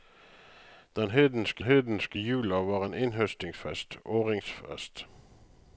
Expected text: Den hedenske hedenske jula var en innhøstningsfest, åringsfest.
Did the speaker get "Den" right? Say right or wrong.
right